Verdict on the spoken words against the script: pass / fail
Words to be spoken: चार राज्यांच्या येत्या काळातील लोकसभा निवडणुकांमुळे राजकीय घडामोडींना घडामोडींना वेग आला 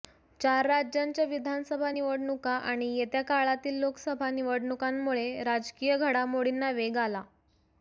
fail